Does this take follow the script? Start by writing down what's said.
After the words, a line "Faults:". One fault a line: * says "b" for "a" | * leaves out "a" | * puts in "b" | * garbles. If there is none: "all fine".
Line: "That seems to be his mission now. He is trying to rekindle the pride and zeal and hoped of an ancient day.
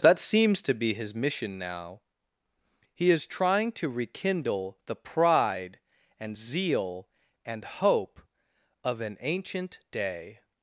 "That seems to be his mission now. He is trying to rekindle the pride and zeal and hope of an ancient day.
Faults:
* says "hope" for "hoped"